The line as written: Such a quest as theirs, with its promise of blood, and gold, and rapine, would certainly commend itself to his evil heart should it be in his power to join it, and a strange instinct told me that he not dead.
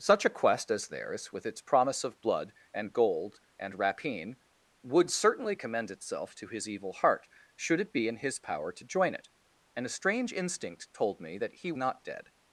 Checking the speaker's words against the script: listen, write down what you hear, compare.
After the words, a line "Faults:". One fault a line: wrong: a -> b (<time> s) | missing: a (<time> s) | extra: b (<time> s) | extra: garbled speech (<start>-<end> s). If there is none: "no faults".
Such a quest as theirs, with its promise of blood, and gold, and rapine, would certainly commend itself to his evil heart should it be in his power to join it, and a strange instinct told me that he not dead.
Faults:
no faults